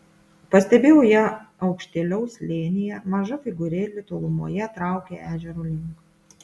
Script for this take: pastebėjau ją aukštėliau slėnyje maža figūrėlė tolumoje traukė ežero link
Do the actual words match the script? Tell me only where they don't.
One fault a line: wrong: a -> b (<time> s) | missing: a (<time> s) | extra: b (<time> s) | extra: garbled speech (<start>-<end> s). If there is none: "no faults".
no faults